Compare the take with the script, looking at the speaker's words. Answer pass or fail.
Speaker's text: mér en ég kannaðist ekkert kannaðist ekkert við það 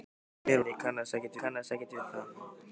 pass